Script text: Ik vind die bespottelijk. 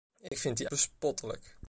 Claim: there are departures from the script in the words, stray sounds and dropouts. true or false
true